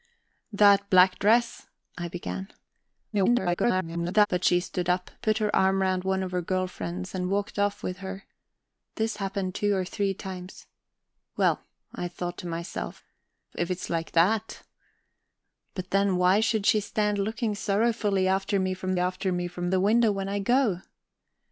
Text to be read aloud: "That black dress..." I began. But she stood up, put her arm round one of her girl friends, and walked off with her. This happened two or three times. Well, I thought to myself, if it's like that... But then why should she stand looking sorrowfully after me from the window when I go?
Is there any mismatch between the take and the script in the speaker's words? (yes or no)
yes